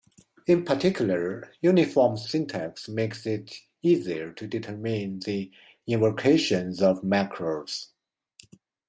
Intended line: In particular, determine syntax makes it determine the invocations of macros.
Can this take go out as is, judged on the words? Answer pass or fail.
fail